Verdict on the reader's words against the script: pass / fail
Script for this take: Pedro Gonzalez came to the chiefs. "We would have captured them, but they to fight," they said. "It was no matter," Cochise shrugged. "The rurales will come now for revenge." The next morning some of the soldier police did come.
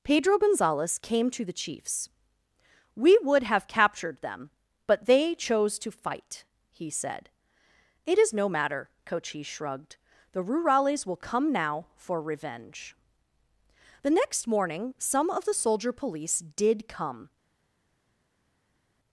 fail